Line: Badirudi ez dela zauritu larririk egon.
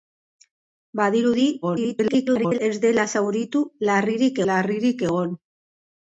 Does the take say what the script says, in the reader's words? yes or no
no